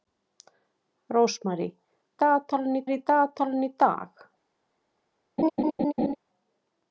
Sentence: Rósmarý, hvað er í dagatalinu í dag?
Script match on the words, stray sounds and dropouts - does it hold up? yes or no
no